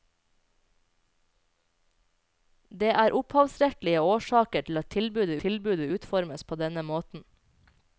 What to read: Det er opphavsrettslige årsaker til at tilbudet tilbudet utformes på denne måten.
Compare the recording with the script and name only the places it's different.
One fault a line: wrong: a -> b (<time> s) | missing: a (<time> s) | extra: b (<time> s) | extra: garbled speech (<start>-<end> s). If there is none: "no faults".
no faults